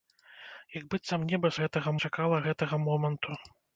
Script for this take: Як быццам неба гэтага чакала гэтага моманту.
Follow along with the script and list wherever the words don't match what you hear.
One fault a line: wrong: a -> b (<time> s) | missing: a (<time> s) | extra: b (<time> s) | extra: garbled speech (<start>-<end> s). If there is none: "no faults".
no faults